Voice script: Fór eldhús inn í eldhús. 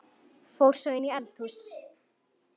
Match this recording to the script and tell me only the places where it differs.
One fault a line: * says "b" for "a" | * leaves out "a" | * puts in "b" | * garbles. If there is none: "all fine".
* says "svo" for "eldhús"